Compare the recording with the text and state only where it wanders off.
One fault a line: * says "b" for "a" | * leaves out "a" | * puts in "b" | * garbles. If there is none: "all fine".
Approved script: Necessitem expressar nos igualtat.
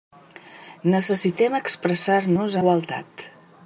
all fine